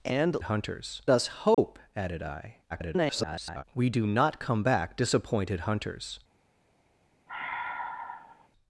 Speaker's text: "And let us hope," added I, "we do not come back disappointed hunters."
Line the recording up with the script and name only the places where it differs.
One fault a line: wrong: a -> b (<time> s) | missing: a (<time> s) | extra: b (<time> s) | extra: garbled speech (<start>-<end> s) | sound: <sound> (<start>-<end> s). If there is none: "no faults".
wrong: let -> hunters (0.4 s)
sound: dropout (1.5-1.6 s)
extra: garbled speech (2.7-3.6 s)
sound: sigh (7.3-8.5 s)